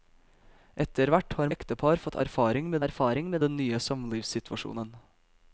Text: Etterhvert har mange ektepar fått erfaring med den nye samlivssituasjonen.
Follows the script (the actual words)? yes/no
no